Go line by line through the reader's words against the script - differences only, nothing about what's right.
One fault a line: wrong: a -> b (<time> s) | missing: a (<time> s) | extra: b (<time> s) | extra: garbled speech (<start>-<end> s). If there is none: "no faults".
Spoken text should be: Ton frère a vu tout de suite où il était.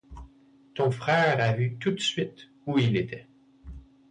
no faults